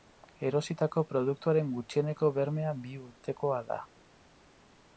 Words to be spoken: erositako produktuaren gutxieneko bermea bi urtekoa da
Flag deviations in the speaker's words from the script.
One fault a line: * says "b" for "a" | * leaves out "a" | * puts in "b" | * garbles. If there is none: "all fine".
all fine